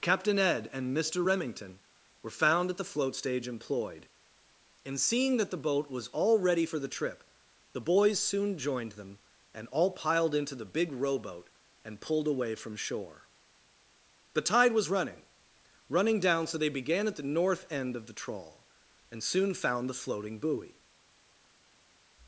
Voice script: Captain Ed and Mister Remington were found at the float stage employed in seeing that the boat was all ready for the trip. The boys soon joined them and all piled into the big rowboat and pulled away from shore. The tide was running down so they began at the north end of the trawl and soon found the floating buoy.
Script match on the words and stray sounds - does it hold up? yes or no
no